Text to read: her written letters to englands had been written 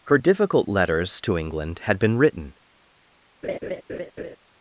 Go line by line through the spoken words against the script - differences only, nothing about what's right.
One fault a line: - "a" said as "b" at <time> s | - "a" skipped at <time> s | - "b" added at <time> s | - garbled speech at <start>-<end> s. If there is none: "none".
- "written" said as "difficult" at 0.2 s
- "englands" said as "england" at 1.4 s